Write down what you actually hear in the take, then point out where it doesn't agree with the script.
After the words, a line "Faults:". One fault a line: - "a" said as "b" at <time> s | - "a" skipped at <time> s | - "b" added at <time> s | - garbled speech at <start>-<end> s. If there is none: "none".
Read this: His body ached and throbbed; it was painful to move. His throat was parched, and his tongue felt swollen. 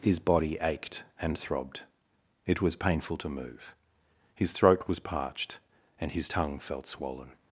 His body ached and throbbed; it was painful to move. His throat was parched, and his tongue felt swollen.
Faults:
none